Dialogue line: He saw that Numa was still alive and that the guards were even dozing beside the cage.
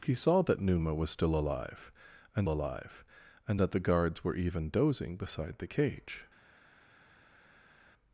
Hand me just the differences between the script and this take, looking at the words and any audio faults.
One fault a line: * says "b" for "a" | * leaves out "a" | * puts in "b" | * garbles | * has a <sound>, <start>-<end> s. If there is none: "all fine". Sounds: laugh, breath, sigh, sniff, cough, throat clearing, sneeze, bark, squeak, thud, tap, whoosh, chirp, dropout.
* puts in "alive and"